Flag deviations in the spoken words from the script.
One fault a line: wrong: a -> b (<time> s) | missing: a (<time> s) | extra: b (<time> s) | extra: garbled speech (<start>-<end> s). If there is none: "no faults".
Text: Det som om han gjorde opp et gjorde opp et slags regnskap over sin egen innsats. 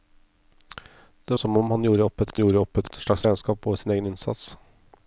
no faults